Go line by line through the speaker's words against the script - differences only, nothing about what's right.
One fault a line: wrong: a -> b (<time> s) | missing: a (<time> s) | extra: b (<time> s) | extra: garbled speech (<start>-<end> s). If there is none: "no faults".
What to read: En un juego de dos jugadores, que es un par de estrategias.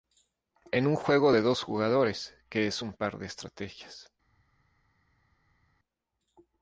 no faults